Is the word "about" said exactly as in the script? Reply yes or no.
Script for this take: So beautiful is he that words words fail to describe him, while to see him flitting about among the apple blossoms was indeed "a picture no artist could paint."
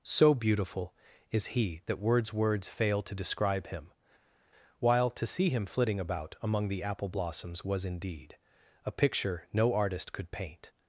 yes